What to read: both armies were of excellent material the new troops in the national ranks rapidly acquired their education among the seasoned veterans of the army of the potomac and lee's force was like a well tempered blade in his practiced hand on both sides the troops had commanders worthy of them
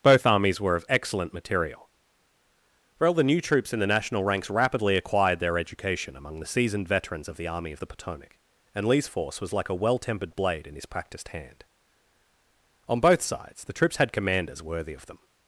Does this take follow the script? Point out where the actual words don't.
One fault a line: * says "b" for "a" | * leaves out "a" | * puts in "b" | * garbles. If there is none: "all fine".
* puts in "well"